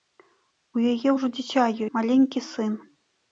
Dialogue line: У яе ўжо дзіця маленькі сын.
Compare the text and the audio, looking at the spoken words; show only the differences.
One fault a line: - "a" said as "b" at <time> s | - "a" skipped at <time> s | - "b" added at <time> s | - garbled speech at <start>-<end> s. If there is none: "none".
none